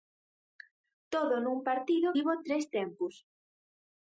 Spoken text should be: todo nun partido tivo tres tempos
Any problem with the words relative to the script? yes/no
no